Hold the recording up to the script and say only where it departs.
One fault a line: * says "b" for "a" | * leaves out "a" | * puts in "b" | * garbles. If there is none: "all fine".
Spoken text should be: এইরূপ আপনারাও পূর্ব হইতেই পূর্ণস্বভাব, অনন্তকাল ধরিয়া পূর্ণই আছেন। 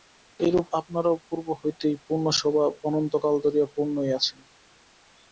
all fine